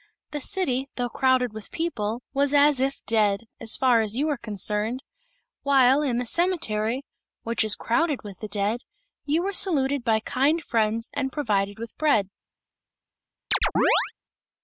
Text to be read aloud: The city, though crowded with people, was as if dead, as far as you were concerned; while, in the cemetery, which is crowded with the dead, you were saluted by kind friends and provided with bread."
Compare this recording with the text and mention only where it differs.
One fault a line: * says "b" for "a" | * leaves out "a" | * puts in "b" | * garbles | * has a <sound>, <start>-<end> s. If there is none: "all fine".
* has a chirp, 13.5-14.1 s